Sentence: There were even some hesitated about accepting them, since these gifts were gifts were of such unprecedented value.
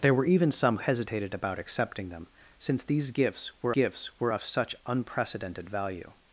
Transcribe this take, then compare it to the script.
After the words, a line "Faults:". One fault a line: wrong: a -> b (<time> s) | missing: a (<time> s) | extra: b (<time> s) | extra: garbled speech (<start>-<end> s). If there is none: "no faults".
There were even some hesitated about accepting them, since these gifts were gifts were of such unprecedented value.
Faults:
no faults